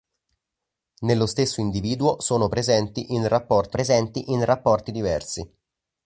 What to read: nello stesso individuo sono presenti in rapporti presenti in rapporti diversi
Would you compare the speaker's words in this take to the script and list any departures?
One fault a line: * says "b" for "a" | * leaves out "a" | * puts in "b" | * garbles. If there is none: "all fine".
all fine